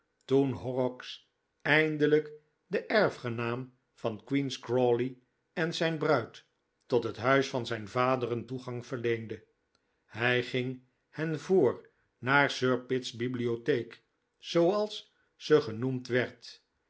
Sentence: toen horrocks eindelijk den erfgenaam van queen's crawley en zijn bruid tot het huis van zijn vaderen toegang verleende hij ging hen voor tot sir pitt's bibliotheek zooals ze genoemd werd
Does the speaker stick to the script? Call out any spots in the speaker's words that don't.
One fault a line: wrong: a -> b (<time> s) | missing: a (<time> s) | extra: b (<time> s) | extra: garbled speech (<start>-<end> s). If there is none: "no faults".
wrong: tot -> naar (12.2 s)